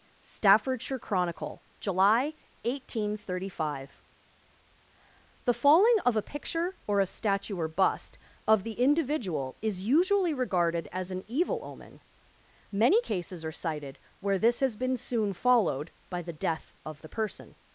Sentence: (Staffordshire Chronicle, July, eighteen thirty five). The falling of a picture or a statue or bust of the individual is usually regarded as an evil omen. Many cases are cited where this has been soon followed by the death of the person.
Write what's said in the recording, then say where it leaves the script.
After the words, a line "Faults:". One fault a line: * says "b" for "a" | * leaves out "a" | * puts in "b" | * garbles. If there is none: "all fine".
(Staffordshire Chronicle, July, eighteen thirty five). The falling of a picture or a statue or bust of the individual is usually regarded as an evil omen. Many cases are cited where this has been soon followed by the death of the person.
Faults:
all fine